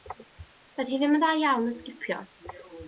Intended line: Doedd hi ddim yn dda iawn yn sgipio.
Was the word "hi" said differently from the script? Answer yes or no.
no